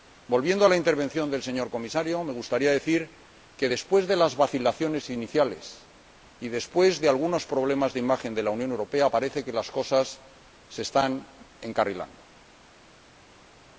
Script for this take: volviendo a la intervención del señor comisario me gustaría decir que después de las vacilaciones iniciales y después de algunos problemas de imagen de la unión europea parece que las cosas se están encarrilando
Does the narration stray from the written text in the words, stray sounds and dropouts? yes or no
no